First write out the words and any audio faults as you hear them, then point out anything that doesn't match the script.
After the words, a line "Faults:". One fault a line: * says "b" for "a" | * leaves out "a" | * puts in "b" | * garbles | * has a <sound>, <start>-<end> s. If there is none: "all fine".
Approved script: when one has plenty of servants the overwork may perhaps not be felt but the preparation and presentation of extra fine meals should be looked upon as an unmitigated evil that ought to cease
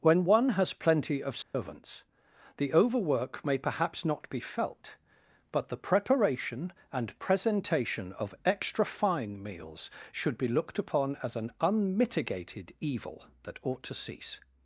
when one has plenty of servants the overwork may perhaps not be felt but the preparation and presentation of extra fine meals should be looked upon as an unmitigated evil that ought to cease
Faults:
* has a dropout, 1.4-1.5 s